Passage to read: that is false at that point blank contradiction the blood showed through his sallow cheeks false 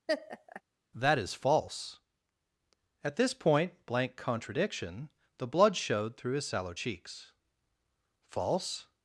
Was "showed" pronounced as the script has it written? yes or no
yes